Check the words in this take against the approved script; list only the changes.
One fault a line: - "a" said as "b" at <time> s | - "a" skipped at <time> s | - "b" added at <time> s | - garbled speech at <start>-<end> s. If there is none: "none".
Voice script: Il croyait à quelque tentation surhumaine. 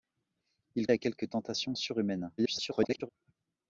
- "croyait" skipped at 0.9 s
- garbled speech at 2.4-3.1 s